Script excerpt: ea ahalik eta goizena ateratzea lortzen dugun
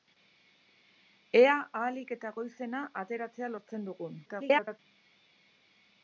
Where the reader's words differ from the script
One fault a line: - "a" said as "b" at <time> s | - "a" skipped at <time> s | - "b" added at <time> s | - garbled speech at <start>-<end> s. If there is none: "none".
- garbled speech at 4.3-4.8 s